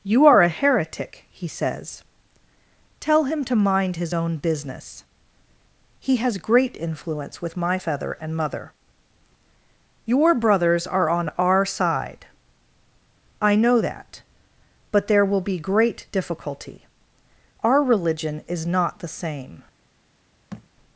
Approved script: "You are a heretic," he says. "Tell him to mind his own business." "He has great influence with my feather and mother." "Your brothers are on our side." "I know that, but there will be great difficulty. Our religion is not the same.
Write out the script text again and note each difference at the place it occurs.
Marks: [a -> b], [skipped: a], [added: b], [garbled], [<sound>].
"You are a heretic," he says. "Tell him to mind his own business." "He has great influence with my feather and mother." "Your brothers are on our side." "I know that, but there will be great difficulty. Our religion is not the same. [thud]